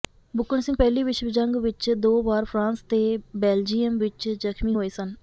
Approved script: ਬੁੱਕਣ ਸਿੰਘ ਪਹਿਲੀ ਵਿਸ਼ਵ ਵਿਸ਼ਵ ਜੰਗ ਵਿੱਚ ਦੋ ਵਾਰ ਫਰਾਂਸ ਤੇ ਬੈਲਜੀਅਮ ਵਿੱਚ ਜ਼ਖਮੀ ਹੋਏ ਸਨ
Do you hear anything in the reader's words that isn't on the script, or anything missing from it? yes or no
yes